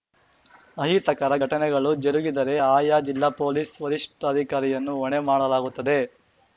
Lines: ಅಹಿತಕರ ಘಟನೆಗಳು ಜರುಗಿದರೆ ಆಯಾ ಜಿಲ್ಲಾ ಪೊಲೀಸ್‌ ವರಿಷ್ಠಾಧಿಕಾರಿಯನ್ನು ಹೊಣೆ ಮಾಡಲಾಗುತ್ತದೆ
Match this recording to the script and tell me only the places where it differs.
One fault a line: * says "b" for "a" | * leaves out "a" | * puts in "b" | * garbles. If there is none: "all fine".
all fine